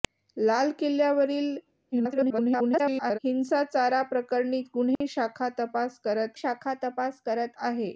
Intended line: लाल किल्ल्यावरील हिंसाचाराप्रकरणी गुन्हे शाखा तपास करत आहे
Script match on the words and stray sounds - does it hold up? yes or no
no